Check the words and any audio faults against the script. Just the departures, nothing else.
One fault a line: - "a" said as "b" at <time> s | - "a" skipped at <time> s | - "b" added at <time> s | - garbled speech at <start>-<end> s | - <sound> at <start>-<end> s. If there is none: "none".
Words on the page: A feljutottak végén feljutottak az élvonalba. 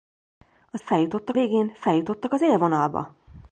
none